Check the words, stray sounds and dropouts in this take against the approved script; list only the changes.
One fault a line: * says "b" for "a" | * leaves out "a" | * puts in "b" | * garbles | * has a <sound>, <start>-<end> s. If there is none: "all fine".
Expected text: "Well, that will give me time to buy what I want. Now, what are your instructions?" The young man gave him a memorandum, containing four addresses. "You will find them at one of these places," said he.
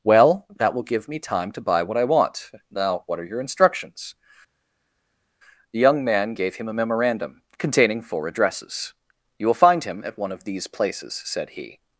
* says "him" for "them"